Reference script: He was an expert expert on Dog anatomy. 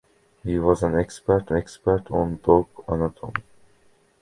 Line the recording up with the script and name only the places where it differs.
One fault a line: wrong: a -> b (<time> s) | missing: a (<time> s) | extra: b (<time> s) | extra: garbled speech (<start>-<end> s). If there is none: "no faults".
no faults